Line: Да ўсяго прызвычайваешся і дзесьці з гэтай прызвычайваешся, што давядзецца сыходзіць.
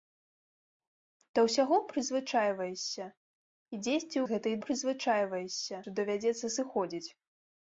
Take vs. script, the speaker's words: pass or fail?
pass